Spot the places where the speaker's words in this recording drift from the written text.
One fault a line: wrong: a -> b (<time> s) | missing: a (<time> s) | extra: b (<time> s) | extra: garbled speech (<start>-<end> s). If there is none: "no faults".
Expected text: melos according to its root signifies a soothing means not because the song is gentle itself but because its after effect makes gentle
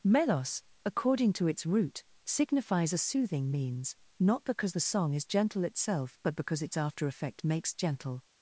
no faults